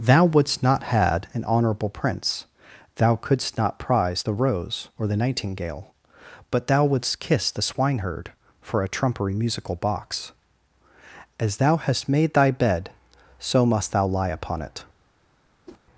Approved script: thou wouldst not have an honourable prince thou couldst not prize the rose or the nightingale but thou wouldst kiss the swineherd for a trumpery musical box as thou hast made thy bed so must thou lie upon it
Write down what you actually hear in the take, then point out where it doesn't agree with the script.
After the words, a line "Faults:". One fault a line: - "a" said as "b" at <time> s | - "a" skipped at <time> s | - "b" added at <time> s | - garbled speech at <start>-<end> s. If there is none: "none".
thou wouldst not had an honourable prince thou couldst not prize the rose or the nightingale but thou wouldst kiss the swineherd for a trumpery musical box as thou hast made thy bed so must thou lie upon it
Faults:
- "have" said as "had" at 0.8 s